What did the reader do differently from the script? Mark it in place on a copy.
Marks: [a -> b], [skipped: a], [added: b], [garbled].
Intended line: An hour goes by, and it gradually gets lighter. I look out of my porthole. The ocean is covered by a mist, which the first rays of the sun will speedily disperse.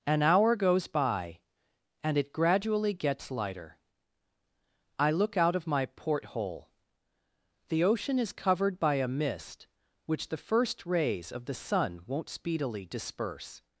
An hour goes by, and it gradually gets lighter. I look out of my porthole. The ocean is covered by a mist, which the first rays of the sun [will -> won't] speedily disperse.